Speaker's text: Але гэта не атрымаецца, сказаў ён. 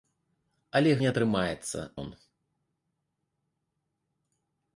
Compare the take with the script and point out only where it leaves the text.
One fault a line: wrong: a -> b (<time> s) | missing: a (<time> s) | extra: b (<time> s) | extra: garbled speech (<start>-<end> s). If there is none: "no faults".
missing: гэта (0.9 s)
missing: сказаў (1.8 s)